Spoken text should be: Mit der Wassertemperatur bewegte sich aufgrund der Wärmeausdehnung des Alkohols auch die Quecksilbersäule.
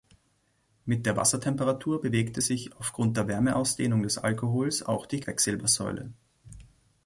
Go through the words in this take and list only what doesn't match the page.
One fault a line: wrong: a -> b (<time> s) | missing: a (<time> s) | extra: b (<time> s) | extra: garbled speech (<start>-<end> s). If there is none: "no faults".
no faults